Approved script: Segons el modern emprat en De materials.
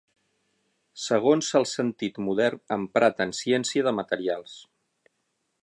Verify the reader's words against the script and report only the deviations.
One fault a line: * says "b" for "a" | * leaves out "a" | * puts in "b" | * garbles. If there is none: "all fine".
* puts in "sentit"
* puts in "Ciència"